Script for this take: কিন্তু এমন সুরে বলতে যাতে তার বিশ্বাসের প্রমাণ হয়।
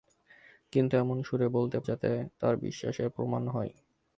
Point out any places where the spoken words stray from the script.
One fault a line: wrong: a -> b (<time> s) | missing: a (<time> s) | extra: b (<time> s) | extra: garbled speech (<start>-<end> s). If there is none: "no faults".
no faults